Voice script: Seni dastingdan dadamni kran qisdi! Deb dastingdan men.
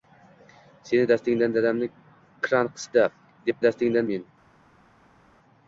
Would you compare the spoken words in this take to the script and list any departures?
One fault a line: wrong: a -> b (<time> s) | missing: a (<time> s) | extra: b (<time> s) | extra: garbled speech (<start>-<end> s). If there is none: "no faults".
no faults